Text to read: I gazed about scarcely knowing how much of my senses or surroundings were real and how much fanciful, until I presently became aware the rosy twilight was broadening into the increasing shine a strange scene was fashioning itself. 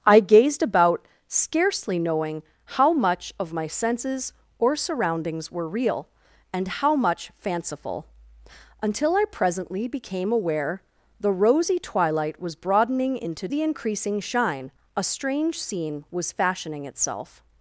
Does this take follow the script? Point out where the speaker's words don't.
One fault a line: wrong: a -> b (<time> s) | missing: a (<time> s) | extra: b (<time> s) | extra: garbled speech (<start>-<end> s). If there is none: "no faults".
no faults